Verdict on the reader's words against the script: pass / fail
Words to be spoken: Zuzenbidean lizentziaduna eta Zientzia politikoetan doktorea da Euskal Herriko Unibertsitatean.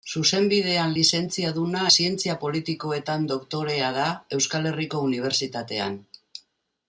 fail